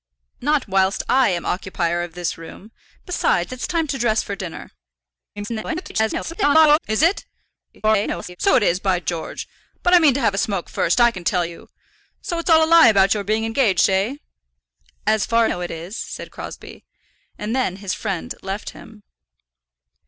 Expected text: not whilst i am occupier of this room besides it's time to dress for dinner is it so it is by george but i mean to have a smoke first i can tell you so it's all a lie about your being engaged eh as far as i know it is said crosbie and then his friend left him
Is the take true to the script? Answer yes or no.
no